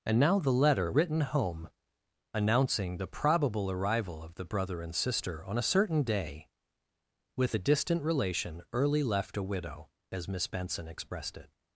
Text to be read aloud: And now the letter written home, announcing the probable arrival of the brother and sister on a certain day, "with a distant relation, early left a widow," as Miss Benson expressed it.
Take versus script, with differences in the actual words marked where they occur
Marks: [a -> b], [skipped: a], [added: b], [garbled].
And now the letter written home, announcing the probable arrival of the brother and sister on a certain day, "with a distant relation, early left a widow," as Miss Benson expressed it.